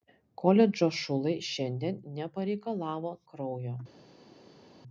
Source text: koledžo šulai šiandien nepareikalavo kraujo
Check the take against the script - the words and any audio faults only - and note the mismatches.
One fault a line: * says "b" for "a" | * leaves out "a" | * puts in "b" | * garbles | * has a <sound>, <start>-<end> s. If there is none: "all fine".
all fine